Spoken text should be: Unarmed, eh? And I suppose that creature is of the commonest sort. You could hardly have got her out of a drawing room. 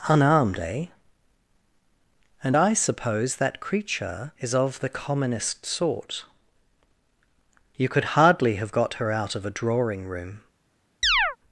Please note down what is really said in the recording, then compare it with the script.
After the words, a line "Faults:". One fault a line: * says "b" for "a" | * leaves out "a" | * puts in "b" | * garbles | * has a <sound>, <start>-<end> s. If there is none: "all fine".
Unarmed, eh? And I suppose that creature is of the commonest sort. You could hardly have got her out of a drawing room.
Faults:
* has a chirp, 11.0-11.4 s